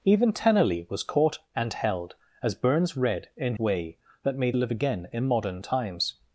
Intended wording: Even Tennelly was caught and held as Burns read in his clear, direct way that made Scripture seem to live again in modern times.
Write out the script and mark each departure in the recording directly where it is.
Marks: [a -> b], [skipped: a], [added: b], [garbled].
Even Tennelly was caught and held as Burns read in [skipped: his clear, direct] way that made [skipped: Scripture seem to] live again in modern times.